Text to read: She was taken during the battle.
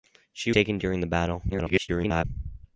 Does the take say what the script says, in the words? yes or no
no